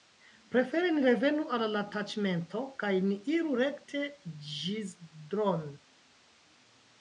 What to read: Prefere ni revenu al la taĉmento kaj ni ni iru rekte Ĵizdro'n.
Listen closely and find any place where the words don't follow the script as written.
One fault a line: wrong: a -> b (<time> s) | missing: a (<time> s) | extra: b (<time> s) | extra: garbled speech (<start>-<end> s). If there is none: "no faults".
missing: ni (3.2 s)